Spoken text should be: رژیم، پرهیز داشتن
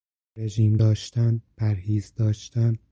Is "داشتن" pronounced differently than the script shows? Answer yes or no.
no